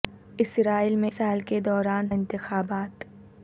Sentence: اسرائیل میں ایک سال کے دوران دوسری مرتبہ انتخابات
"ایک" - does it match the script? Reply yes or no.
no